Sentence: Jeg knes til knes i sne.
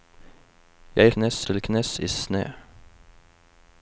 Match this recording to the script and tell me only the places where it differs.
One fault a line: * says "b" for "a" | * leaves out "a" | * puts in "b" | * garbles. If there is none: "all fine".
all fine